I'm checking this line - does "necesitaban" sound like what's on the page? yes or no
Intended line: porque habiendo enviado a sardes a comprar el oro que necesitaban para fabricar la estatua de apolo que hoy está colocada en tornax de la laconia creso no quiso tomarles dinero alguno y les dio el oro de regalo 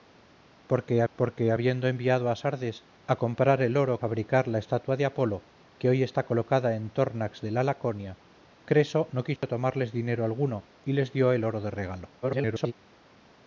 no